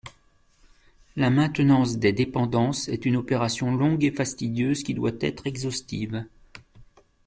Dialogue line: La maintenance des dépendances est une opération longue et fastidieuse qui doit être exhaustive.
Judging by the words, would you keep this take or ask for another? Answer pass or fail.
pass